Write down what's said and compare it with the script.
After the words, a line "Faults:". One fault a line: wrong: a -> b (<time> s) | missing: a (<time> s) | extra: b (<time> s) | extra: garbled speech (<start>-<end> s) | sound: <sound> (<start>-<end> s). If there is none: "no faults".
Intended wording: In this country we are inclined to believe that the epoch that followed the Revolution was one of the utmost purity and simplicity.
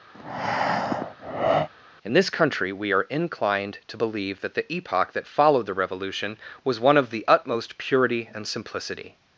In this country we are inclined to believe that the epoch that followed the Revolution was one of the utmost purity and simplicity.
Faults:
sound: breath (0.1-1.7 s)